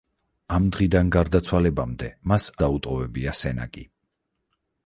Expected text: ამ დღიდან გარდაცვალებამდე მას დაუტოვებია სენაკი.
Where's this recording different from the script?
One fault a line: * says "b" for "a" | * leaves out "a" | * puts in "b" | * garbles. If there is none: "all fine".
all fine